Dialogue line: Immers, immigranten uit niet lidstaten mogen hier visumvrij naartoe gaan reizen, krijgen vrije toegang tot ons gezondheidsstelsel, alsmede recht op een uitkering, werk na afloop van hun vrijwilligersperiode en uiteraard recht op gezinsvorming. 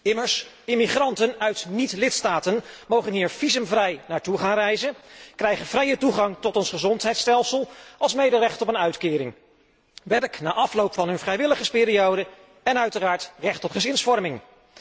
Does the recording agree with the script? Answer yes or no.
yes